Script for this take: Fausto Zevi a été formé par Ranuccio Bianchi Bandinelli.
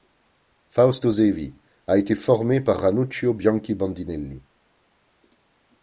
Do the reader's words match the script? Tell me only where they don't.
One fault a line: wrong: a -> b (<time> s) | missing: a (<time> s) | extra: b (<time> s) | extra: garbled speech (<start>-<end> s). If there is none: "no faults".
no faults